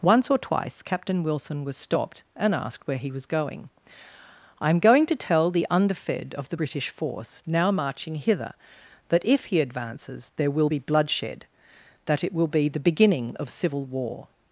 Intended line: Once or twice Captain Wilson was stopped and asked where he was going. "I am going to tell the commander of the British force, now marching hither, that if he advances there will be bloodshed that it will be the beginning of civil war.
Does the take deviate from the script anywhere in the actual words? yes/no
yes